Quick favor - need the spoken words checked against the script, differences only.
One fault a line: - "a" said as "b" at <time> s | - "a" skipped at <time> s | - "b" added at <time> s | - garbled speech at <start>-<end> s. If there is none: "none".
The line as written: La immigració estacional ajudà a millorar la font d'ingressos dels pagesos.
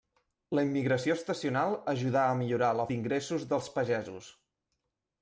- "font" skipped at 2.9 s